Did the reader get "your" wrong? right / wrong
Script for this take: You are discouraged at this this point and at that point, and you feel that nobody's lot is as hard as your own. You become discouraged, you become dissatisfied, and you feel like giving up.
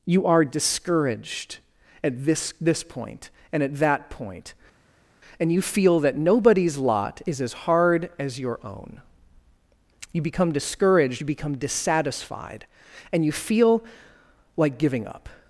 right